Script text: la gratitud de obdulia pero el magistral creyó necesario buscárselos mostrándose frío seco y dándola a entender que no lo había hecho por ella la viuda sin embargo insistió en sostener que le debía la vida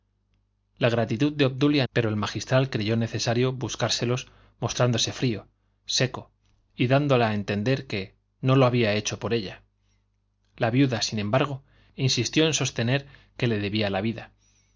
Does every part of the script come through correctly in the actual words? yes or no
yes